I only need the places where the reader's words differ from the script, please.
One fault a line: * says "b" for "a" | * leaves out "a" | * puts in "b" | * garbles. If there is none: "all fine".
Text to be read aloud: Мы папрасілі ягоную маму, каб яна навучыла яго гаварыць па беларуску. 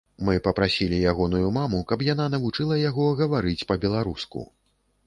all fine